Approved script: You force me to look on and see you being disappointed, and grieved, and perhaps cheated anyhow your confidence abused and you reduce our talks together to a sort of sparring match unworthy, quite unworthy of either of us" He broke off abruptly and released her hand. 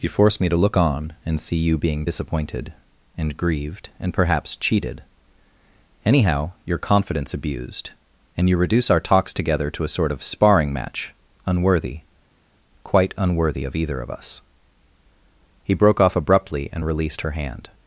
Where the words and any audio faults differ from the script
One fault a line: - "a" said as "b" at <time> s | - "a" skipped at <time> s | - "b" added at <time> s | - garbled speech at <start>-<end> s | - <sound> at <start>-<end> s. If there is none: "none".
none